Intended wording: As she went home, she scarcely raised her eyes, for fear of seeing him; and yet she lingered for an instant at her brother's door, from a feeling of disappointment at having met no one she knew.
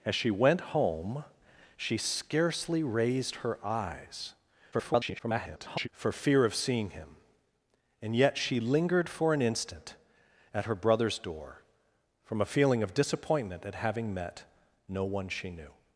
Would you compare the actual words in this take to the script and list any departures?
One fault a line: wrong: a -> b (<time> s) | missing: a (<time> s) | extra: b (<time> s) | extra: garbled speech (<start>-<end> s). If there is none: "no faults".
extra: garbled speech (4.7-5.9 s)